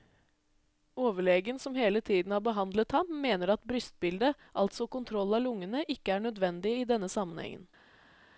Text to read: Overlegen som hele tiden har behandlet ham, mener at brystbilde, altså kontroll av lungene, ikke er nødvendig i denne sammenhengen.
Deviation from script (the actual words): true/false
false